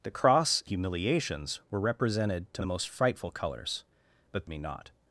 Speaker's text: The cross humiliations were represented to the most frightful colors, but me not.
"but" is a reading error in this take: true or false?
false